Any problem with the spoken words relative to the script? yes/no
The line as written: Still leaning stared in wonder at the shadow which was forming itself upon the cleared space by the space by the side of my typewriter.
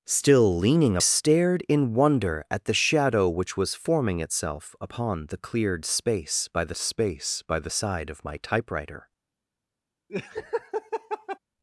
no